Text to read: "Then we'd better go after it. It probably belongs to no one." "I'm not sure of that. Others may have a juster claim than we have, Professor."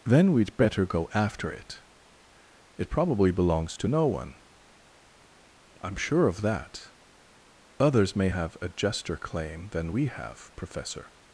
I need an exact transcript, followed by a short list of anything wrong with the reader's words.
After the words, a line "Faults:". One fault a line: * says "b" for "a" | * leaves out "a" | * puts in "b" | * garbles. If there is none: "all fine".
"Then we'd better go after it. It probably belongs to no one." "I'm sure of that. Others may have a juster claim than we have, Professor."
Faults:
* leaves out "not"